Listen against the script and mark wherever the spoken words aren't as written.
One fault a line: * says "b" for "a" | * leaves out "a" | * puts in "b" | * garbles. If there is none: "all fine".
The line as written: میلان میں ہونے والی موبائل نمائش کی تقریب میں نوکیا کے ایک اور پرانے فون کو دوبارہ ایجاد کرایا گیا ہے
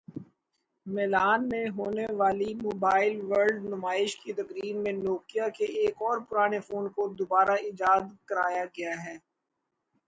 * puts in "ورلڈ"